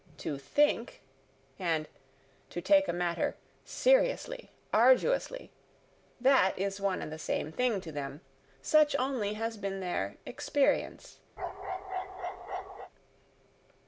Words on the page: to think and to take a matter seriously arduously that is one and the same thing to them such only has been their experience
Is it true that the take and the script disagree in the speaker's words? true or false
false